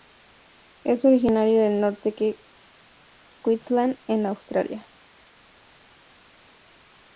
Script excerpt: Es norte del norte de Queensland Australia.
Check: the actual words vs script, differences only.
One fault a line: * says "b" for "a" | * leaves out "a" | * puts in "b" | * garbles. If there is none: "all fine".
* says "originario" for "norte"
* puts in "en"